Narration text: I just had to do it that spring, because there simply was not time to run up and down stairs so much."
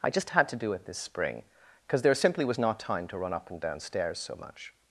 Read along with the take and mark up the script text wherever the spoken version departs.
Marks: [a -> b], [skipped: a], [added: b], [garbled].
I just had to do it [that -> this] spring, because there simply was not time to run up and down stairs so much."